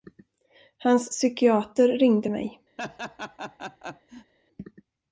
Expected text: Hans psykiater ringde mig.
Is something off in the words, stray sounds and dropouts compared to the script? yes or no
yes